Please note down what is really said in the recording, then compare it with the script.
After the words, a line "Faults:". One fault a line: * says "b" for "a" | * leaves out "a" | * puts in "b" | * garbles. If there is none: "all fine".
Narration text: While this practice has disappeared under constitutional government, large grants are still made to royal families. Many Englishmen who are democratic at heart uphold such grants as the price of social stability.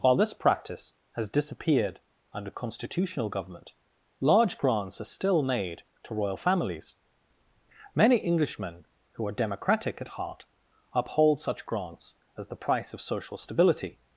While this practice has disappeared under constitutional government, large grants are still made to royal families. Many Englishmen who are democratic at heart uphold such grants as the price of social stability.
Faults:
all fine